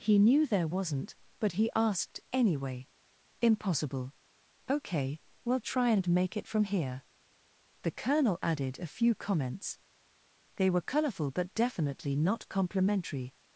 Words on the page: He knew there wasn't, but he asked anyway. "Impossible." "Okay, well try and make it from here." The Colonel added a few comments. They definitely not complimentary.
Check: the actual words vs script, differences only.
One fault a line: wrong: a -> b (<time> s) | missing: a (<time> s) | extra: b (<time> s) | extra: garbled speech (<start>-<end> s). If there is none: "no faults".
extra: were colorful but (10.7 s)